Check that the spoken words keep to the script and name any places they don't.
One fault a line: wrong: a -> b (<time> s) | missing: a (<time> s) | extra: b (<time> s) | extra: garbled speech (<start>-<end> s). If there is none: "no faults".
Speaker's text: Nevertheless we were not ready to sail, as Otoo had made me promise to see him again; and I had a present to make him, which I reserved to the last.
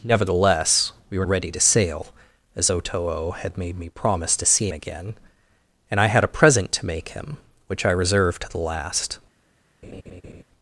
missing: not (1.2 s)
missing: him (4.7 s)